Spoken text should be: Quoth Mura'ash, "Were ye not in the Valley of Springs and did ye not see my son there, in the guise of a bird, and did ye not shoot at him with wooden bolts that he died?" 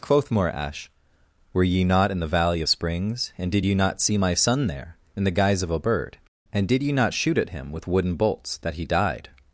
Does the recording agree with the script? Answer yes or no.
yes